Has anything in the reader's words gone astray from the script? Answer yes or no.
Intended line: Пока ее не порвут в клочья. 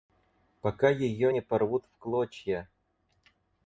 no